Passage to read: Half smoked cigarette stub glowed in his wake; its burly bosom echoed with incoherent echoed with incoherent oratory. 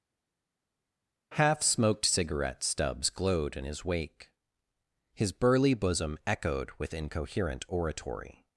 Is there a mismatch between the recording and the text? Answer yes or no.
yes